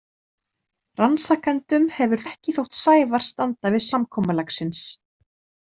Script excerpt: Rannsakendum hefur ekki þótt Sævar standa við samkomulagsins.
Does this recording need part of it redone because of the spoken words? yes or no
no